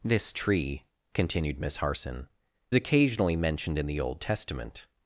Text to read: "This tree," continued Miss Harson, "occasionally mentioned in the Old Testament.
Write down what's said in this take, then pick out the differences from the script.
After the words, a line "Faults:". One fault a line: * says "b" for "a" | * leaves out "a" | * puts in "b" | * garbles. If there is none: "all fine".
"This tree," continued Miss Harson, "occasionally mentioned in the Old Testament.
Faults:
all fine